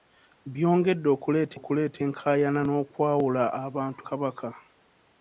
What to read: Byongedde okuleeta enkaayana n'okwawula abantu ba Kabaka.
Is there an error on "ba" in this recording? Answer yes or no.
yes